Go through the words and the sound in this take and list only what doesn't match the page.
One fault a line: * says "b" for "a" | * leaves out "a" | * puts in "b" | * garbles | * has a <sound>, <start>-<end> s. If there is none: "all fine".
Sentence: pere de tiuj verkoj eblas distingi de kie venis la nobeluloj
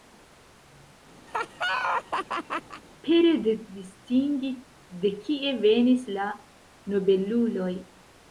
* has a laugh, 1.3-2.8 s
* leaves out "tiuj verkoj eblas"